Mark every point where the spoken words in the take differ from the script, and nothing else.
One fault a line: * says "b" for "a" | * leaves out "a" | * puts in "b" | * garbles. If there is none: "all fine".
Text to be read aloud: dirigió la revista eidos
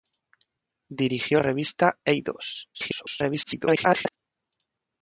* leaves out "la"
* garbles